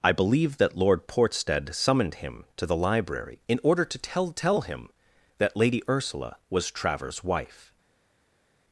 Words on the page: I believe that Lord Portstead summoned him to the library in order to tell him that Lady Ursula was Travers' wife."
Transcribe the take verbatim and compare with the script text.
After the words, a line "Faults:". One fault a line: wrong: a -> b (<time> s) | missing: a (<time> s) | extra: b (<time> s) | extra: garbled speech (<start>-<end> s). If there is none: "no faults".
I believe that Lord Portstead summoned him to the library in order to tell tell him that Lady Ursula was Travers' wife."
Faults:
extra: tell (4.3 s)